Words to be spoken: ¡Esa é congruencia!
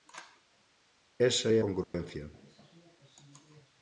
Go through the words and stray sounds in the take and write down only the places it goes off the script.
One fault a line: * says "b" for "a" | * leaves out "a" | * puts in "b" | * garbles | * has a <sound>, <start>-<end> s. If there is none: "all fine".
* has a dropout, 1.8-1.9 s